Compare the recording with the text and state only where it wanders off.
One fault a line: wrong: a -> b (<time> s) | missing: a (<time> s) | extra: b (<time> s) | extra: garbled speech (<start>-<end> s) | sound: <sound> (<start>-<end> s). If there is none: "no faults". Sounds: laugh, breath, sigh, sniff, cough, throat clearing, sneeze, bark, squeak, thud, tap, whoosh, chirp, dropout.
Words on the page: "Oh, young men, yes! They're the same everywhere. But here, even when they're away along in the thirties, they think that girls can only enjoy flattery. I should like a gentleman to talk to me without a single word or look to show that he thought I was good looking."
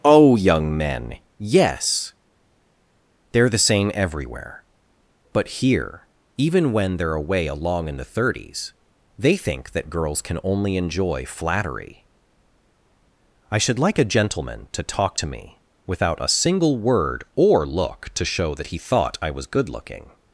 no faults